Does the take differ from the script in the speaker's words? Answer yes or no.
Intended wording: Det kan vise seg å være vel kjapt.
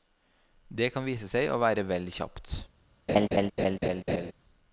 no